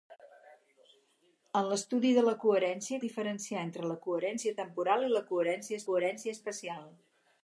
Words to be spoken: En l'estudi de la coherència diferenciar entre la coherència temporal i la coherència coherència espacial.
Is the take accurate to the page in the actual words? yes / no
yes